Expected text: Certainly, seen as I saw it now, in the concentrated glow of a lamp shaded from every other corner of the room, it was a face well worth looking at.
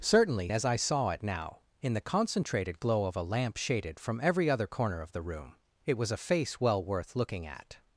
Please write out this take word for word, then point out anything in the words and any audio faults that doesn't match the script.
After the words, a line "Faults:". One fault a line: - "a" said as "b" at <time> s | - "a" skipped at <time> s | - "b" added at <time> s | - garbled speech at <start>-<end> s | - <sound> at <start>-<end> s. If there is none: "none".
Certainly, as I saw it now, in the concentrated glow of a lamp shaded from every other corner of the room, it was a face well worth looking at.
Faults:
- "seen" skipped at 0.5 s